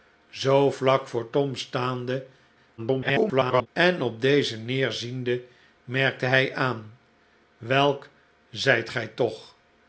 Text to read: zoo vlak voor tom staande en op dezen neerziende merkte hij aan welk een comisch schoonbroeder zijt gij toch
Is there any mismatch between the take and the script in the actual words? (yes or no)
yes